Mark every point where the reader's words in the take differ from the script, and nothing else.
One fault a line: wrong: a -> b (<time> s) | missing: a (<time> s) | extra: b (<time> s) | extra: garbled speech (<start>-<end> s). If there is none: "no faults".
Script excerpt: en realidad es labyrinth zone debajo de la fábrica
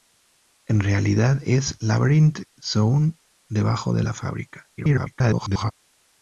extra: garbled speech (4.8-5.7 s)